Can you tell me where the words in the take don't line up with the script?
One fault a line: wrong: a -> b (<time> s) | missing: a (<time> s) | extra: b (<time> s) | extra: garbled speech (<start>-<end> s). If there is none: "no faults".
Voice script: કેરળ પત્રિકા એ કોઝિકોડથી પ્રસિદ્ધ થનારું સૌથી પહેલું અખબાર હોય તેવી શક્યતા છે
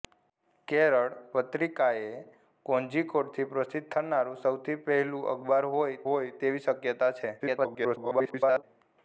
extra: હોય (6.0 s)
extra: garbled speech (7.4-8.6 s)